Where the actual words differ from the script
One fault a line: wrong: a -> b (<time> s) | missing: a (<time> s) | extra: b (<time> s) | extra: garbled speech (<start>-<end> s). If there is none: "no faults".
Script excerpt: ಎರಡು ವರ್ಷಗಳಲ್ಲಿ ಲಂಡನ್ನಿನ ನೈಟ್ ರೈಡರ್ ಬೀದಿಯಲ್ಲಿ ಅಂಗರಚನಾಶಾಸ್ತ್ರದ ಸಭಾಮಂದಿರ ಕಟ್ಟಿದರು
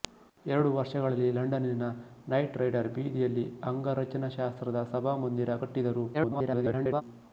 extra: garbled speech (6.1-7.0 s)